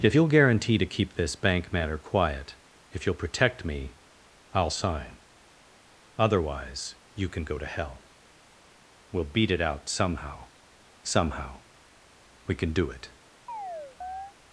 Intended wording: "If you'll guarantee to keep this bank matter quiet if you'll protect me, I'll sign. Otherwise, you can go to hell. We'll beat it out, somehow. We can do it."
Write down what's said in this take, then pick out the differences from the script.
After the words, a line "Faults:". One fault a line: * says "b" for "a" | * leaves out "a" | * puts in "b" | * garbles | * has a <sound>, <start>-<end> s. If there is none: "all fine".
"If you'll guarantee to keep this bank matter quiet if you'll protect me, I'll sign. Otherwise, you can go to hell. We'll beat it out, somehow somehow. We can do it."
Faults:
* puts in "somehow"
* has a chirp, 13.5-14.3 s